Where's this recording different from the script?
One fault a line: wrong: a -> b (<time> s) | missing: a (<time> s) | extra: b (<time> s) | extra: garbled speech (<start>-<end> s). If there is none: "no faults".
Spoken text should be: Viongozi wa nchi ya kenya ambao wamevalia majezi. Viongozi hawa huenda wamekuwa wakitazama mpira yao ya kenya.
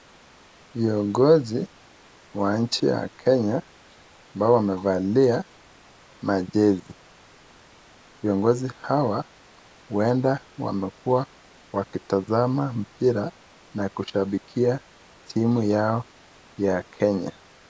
extra: na kushabikia timu (13.7 s)